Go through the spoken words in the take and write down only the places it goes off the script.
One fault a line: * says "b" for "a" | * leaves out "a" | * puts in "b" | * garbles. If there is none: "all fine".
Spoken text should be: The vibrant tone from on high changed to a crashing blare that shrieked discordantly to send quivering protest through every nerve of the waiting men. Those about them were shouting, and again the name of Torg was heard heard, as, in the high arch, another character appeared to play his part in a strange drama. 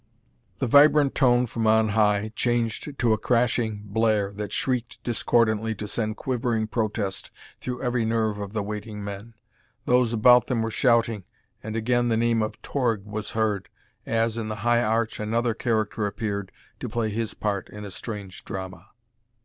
* leaves out "heard"